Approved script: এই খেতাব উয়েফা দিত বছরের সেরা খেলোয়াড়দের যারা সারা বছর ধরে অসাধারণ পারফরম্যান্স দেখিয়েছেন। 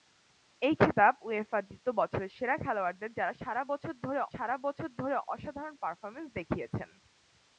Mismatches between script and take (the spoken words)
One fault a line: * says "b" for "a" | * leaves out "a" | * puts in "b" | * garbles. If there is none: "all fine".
* puts in "সারা বছর ধরে"